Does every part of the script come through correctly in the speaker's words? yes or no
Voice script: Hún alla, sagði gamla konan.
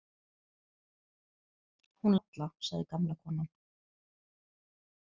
yes